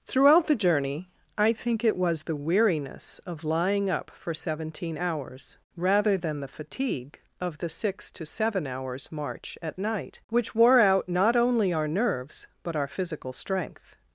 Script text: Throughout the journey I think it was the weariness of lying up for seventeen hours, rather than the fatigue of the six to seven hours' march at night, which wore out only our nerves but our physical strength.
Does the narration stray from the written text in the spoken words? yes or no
yes